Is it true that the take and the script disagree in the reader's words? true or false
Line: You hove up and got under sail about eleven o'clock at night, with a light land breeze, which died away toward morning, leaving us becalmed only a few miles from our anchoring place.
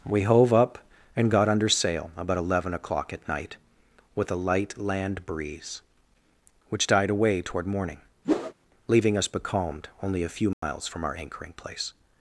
true